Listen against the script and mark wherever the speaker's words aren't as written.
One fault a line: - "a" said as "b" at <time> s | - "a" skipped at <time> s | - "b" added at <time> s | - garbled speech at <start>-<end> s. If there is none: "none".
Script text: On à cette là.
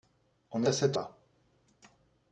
none